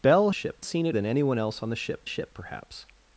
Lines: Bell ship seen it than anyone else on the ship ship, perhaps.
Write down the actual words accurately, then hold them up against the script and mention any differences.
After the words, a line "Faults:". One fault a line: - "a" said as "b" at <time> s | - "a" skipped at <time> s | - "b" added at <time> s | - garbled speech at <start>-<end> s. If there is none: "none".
Bell ship seen it than anyone else on the ship ship, perhaps.
Faults:
none